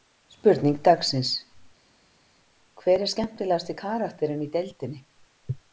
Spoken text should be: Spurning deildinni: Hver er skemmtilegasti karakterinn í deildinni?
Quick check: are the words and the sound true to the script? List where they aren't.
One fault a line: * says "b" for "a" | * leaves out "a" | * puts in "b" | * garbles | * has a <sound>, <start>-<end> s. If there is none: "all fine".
* says "dagsins" for "deildinni"